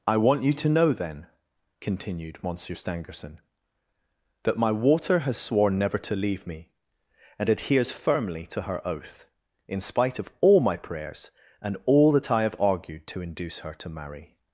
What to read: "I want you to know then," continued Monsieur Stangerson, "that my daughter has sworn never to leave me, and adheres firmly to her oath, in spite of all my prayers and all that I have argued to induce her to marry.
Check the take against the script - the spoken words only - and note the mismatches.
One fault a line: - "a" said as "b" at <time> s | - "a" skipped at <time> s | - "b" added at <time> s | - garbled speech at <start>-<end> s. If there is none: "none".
- "daughter" said as "water" at 4.7 s